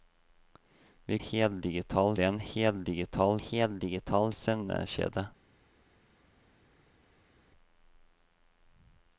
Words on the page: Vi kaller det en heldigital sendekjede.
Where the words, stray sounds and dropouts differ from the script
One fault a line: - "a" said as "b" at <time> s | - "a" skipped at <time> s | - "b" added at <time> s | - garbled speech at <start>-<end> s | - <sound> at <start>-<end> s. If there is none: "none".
- "kaller" said as "heldigital" at 1.2 s
- "heldigital" added at 3.4 s